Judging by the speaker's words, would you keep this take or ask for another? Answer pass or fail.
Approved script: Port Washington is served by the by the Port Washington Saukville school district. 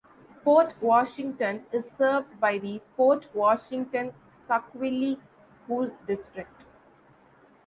fail